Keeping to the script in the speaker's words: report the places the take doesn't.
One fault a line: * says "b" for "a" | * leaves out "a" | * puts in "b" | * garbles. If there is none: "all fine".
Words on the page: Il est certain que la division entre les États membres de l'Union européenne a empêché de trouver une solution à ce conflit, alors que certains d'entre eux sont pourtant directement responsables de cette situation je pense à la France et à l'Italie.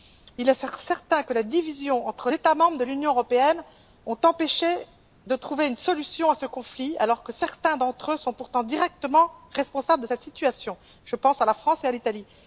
* leaves out "les"